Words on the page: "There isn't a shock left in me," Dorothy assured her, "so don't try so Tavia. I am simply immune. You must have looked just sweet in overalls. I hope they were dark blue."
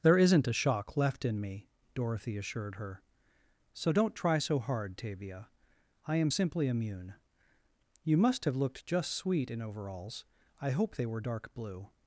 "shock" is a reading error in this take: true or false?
false